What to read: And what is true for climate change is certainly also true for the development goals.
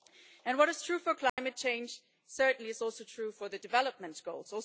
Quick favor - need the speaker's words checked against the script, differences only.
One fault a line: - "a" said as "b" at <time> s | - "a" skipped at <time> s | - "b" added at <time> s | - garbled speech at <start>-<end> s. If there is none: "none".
none